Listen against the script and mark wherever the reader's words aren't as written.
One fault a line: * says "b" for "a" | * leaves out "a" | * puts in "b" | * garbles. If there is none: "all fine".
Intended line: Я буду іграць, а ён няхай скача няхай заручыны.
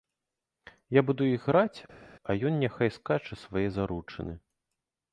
* says "свае" for "няхай"